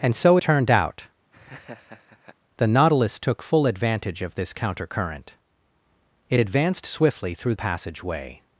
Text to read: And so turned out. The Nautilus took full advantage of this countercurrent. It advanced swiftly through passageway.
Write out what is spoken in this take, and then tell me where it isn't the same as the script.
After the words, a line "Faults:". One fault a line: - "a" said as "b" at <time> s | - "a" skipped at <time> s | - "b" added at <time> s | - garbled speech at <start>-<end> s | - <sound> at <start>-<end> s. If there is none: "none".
And so turned out. The Nautilus took full advantage of this countercurrent. It advanced swiftly through passageway.
Faults:
- laugh at 1.3-2.4 s